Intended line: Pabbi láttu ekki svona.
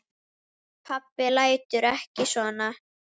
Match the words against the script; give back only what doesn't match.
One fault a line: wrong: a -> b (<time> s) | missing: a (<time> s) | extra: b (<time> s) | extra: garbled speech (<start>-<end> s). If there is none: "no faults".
no faults